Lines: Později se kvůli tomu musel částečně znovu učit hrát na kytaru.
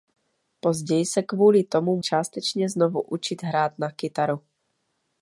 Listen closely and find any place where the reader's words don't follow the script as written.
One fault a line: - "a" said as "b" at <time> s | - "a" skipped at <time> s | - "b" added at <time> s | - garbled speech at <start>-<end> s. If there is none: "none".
- "musel" skipped at 2.0 s